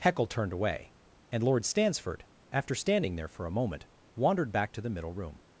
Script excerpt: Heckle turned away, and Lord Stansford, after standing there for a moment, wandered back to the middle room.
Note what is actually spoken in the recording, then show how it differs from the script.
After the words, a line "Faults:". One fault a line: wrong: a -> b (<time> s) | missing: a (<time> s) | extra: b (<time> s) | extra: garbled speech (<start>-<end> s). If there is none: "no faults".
Heckle turned away, and Lord Stansford, after standing there for a moment, wandered back to the middle room.
Faults:
no faults